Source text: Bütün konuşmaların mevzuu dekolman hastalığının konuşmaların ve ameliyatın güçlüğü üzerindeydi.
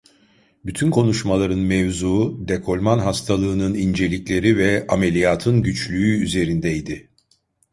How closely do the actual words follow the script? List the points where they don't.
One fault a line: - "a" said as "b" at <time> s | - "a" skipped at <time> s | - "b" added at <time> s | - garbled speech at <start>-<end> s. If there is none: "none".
- "konuşmaların" said as "incelikleri" at 3.7 s